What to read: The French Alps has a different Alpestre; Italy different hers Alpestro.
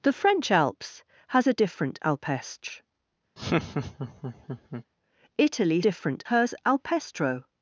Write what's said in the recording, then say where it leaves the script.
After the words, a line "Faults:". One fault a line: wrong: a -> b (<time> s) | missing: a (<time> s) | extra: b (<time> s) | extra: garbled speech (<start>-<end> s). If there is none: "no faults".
The French Alps has a different Alpestre; Italy different hers Alpestro.
Faults:
no faults